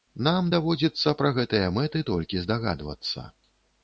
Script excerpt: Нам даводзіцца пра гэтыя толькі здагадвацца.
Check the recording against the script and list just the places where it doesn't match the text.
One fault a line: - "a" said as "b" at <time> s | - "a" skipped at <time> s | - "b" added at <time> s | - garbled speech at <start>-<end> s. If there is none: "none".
- "мэты" added at 1.8 s